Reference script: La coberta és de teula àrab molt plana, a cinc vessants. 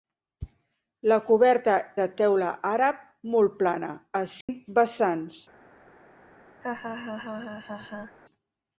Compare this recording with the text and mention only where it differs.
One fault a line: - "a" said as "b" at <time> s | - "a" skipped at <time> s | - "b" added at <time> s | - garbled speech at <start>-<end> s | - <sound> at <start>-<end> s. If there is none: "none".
- "és" skipped at 1.8 s
- dropout at 4.4-4.5 s
- laugh at 6.6-8.2 s